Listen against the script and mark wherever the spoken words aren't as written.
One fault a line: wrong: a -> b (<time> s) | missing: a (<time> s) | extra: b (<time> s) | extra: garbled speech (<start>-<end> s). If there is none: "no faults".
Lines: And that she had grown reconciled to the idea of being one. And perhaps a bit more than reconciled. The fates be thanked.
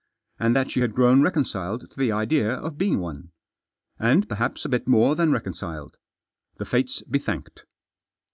no faults